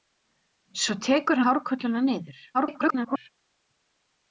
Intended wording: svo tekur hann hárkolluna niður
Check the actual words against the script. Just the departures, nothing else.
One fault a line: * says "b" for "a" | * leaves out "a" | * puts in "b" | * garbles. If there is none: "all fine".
* leaves out "hann"
* garbles